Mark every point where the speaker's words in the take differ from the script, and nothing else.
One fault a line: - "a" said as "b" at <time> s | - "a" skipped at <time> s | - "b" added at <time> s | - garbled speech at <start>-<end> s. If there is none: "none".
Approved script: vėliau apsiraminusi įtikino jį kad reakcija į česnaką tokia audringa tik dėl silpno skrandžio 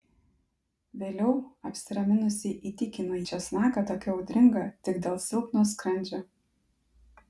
- "jį kad reakcija" skipped at 3.2 s